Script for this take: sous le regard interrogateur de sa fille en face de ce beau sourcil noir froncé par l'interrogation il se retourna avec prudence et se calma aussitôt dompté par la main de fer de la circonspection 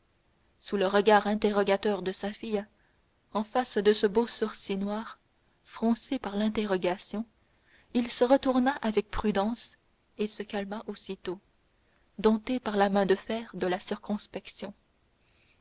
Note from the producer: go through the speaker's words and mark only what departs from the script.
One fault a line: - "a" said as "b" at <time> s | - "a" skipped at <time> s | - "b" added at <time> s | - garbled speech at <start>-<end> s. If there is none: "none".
none